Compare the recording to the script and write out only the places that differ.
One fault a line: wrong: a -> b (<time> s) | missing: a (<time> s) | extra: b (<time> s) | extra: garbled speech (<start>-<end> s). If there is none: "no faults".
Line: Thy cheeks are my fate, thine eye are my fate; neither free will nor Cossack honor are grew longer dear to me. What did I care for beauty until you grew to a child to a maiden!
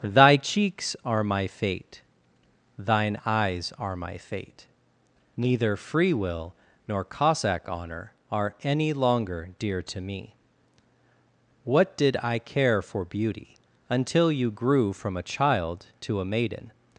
wrong: eye -> eyes (3.2 s)
wrong: grew -> any (8.6 s)
wrong: to -> from (14.9 s)